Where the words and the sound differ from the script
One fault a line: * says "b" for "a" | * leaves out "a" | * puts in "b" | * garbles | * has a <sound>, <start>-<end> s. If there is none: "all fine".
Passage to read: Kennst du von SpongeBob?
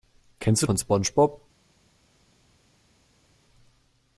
all fine